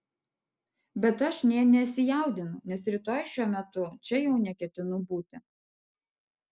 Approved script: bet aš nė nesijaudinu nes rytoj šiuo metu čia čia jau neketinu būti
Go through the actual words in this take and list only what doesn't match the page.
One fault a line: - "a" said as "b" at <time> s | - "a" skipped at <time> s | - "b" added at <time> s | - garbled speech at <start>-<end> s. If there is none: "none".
- "čia" skipped at 4.2 s